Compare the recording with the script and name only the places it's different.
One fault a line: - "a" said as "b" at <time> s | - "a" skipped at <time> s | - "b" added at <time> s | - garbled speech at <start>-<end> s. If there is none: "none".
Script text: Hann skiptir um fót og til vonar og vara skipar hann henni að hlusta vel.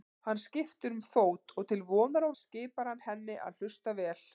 - "vara" skipped at 2.4 s